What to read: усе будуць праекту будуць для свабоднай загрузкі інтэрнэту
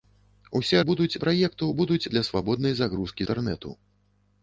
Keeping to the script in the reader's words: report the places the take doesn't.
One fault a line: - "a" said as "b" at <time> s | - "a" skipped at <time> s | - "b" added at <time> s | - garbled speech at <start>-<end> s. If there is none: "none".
none